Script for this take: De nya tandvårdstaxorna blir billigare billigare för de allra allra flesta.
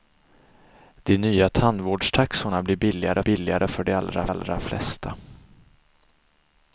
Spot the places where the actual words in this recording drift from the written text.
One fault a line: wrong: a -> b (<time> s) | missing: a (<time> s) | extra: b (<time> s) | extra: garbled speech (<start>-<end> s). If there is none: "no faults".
no faults